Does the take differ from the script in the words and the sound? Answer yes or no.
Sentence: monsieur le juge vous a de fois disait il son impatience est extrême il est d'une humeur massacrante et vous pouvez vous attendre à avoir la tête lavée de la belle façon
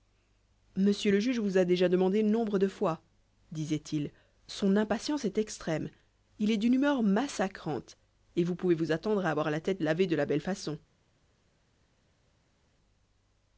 yes